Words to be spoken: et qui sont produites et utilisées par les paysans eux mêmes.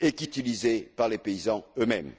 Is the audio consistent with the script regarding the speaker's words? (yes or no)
no